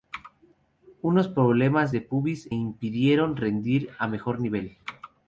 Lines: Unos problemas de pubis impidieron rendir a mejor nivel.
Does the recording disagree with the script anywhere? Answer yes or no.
no